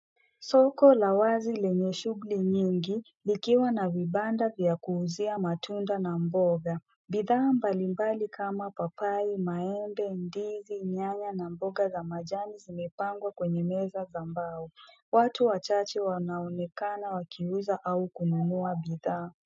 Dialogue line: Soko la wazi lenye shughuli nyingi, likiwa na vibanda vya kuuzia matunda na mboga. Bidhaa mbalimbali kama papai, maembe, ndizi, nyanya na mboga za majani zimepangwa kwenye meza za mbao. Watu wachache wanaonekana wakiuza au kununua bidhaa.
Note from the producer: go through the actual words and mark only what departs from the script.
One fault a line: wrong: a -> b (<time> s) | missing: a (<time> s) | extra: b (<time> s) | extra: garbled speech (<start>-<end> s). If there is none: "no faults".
no faults